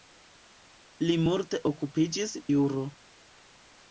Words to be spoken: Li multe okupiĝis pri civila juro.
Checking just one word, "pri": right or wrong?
wrong